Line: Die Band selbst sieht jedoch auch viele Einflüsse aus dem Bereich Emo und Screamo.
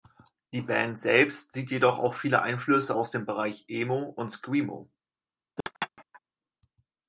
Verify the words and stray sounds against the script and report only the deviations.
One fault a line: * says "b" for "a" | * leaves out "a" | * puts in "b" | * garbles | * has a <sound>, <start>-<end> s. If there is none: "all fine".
* has a laugh, 5.6-6.2 s